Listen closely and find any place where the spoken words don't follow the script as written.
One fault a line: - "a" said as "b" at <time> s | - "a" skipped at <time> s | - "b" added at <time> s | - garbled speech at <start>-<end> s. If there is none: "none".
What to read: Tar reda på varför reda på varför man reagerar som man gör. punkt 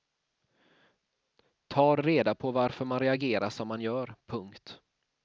- "reda på varför" skipped at 2.9 s